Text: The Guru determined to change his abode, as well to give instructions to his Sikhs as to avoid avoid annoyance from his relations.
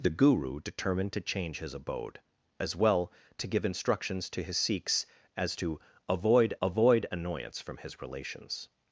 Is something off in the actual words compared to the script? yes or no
no